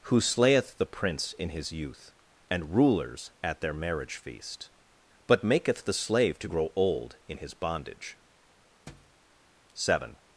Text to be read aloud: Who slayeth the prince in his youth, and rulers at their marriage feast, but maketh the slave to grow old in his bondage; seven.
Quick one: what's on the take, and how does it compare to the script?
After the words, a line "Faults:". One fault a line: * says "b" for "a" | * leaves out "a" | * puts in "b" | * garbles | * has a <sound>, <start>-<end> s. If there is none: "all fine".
Who slayeth the prince in his youth, and rulers at their marriage feast, but maketh the slave to grow old in his bondage; seven.
Faults:
* has a thud, 8.9-9.2 s